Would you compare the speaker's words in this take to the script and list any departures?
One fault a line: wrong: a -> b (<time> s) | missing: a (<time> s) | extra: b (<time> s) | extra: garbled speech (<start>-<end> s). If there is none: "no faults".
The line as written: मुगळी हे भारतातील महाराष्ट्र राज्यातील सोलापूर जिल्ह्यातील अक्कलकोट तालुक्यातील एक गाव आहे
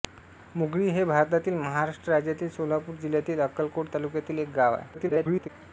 extra: garbled speech (4.9-5.5 s)